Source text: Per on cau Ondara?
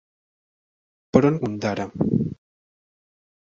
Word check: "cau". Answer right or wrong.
wrong